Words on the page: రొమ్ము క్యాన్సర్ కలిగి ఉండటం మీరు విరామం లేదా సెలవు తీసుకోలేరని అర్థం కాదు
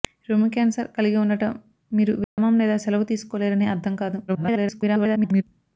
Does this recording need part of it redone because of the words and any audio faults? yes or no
yes